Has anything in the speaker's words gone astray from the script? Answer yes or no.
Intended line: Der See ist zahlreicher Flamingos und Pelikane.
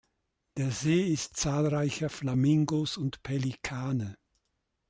no